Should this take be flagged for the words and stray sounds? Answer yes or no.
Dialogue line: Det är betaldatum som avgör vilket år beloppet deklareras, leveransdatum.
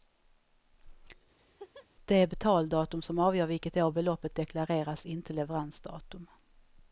yes